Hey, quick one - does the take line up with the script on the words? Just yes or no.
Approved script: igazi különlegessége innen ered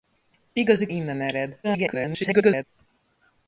no